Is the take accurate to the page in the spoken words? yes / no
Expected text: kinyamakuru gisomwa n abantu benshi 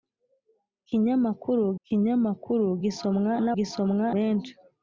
no